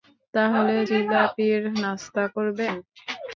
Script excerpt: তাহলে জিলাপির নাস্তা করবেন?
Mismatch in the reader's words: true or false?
false